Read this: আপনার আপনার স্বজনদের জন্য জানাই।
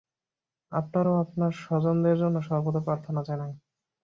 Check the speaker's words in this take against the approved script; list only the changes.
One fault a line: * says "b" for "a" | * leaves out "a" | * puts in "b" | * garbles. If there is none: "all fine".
* puts in "ও"
* puts in "সর্বদা প্রার্থনা"